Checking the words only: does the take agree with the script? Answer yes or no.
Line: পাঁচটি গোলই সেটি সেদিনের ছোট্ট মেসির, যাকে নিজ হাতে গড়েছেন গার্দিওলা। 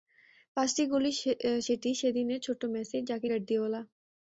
no